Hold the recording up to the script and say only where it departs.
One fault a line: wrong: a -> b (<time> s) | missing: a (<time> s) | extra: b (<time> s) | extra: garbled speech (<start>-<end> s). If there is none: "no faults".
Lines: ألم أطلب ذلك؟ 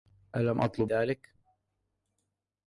no faults